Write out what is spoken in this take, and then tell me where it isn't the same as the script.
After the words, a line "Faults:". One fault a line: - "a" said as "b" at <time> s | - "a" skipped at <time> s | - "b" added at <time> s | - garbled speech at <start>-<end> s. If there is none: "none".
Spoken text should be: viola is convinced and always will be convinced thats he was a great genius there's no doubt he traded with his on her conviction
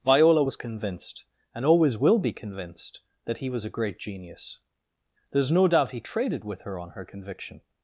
viola was convinced and always will be convinced that he was a great genius there's no doubt he traded with her on her conviction
Faults:
- "is" said as "was" at 0.4 s
- "thats" said as "that" at 3.3 s
- "his" said as "her" at 6.6 s